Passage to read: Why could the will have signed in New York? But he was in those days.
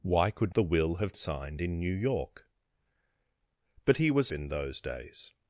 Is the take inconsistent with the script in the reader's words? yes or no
no